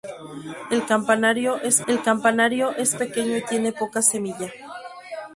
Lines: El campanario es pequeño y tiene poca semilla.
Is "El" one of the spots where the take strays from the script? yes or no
no